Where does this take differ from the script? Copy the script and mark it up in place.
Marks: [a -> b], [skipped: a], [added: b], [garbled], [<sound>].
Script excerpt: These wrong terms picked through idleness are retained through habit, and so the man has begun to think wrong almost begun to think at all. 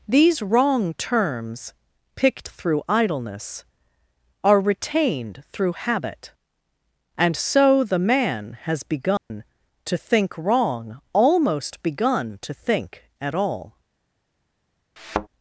These wrong terms picked through idleness are retained through habit, and so the man has begun [dropout] to think wrong almost begun to think at all. [thud]